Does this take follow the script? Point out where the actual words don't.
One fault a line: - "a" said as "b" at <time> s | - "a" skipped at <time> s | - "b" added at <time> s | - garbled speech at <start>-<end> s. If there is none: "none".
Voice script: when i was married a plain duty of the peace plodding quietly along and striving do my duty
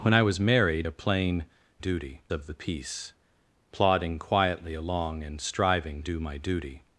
none